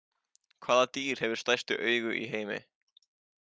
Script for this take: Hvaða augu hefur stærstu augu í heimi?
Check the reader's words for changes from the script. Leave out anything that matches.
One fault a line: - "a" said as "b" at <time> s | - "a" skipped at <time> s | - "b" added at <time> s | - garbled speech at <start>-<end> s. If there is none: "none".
- "augu" said as "dýr" at 1.0 s